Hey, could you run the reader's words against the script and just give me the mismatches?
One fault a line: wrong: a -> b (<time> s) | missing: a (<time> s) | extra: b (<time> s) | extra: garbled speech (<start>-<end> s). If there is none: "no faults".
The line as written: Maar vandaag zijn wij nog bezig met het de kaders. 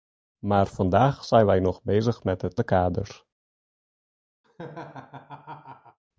no faults